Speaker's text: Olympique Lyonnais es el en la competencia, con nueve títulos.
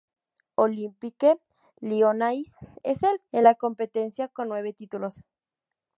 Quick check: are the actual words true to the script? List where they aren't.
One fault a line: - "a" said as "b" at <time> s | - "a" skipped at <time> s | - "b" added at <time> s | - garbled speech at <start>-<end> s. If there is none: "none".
none